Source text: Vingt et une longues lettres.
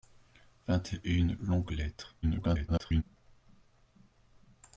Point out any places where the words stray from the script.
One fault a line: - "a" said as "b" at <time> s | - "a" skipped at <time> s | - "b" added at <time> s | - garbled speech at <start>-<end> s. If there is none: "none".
- garbled speech at 2.2-3.0 s